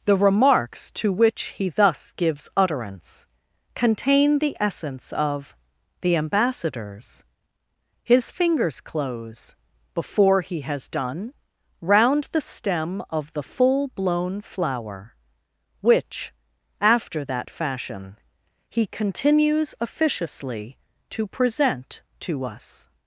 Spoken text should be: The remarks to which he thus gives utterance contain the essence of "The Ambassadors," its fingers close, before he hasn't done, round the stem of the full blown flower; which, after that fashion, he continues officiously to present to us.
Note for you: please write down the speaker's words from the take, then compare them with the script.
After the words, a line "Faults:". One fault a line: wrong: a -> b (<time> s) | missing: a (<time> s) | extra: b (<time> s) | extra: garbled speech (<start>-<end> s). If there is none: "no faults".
The remarks to which he thus gives utterance contain the essence of "The Ambassadors," his fingers close, before he has done, round the stem of the full blown flower; which, after that fashion, he continues officiously to present to us.
Faults:
wrong: its -> his (8.0 s)
wrong: hasn't -> has (10.6 s)